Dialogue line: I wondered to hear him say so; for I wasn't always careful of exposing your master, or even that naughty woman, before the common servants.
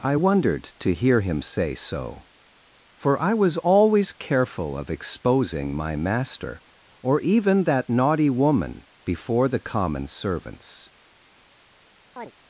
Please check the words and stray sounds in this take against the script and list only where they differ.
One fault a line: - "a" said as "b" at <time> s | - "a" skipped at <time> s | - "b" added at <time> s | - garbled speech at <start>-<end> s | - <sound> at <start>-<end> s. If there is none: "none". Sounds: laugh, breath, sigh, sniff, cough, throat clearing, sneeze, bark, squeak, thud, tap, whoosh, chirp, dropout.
- "wasn't" said as "was" at 3.3 s
- "your" said as "my" at 5.7 s
- chirp at 12.2-12.3 s